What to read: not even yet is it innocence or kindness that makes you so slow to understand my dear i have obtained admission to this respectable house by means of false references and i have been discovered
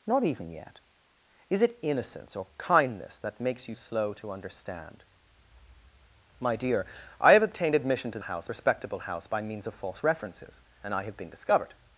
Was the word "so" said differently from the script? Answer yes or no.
yes